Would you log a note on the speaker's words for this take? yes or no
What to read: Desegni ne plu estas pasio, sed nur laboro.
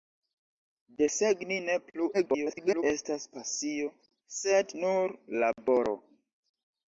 yes